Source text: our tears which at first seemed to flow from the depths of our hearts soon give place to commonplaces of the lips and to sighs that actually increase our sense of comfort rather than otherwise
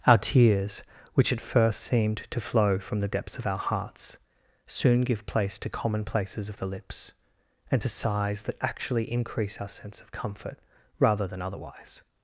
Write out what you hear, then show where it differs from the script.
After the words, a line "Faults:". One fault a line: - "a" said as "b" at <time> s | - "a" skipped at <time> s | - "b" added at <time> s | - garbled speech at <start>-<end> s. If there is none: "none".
our tears which at first seemed to flow from the depths of our hearts soon give place to commonplaces of the lips and to sighs that actually increase our sense of comfort rather than otherwise
Faults:
none